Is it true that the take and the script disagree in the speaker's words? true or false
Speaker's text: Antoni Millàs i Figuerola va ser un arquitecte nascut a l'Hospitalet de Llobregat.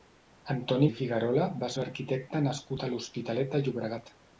true